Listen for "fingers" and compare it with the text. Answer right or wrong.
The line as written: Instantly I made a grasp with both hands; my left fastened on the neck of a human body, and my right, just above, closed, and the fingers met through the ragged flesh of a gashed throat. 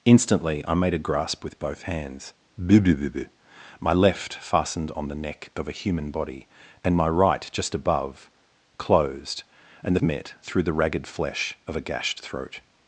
wrong